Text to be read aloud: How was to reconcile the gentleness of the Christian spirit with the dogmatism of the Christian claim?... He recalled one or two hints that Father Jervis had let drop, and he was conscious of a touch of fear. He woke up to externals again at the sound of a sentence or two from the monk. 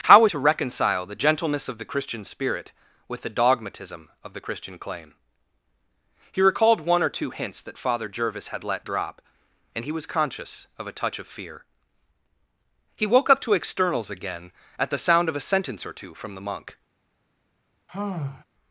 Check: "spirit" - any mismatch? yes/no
no